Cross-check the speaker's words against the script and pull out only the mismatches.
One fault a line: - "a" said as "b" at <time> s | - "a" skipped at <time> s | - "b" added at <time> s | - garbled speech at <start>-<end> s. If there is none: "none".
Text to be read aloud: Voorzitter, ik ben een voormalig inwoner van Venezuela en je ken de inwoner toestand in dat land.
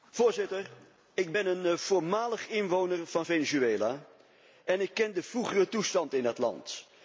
- "je" said as "ik" at 4.8 s
- "inwoner" said as "vroegere" at 5.2 s